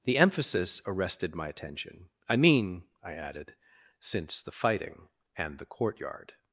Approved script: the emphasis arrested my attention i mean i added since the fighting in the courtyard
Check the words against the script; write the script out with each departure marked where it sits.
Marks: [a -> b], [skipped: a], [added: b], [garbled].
the emphasis arrested my attention i mean i added since the fighting [in -> and] the courtyard